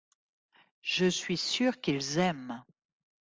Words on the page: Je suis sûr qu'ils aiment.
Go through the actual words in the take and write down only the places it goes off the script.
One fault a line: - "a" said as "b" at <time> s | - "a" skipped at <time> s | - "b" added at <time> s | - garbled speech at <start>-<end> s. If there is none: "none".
none